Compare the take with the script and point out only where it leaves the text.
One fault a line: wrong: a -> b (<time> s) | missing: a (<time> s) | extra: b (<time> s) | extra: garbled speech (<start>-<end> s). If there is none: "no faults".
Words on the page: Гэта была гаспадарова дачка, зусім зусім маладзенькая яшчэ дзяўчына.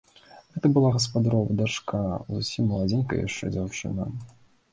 missing: зусім (2.7 s)